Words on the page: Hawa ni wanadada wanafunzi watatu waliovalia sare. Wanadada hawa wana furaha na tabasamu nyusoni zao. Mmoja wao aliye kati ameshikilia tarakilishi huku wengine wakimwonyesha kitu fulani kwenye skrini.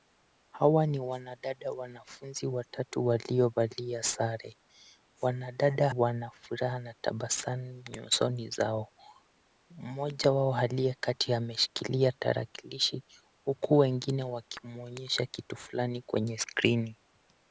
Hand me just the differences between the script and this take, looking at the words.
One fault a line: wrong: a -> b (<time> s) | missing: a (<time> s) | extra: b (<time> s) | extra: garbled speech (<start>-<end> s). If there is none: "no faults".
missing: hawa (5.9 s)